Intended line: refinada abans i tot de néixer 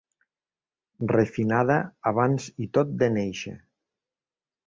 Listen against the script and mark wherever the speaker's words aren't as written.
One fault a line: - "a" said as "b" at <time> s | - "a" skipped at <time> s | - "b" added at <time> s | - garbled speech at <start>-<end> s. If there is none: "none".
none